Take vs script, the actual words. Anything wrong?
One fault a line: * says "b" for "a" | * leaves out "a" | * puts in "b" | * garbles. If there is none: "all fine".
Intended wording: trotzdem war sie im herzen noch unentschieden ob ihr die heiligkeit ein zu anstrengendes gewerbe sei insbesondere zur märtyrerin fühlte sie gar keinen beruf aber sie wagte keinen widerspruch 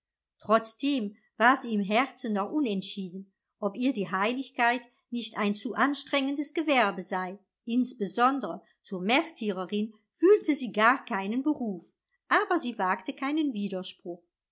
* puts in "nicht"